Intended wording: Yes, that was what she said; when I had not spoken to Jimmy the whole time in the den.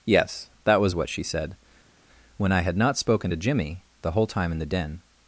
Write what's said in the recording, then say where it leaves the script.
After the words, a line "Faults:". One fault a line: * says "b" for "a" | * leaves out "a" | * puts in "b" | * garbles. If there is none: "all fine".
Yes, that was what she said; when I had not spoken to Jimmy the whole time in the den.
Faults:
all fine